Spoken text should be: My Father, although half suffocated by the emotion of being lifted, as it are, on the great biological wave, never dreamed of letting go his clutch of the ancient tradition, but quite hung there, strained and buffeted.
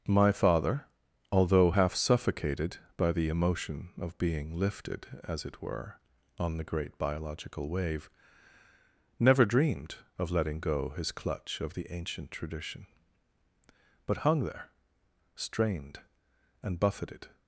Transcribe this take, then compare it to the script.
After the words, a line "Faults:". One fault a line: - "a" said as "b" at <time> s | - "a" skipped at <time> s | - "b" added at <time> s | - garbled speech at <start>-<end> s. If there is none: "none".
My Father, although half suffocated by the emotion of being lifted, as it were, on the great biological wave, never dreamed of letting go his clutch of the ancient tradition, but hung there, strained and buffeted.
Faults:
- "are" said as "were" at 5.6 s
- "quite" skipped at 14.2 s